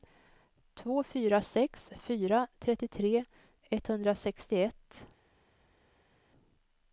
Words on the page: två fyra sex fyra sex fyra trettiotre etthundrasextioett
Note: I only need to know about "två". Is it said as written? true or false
true